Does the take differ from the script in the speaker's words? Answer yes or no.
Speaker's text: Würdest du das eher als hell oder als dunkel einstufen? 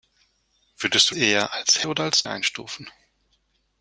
yes